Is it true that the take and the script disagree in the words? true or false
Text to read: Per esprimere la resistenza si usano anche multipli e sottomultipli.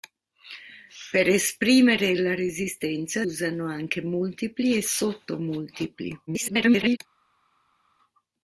true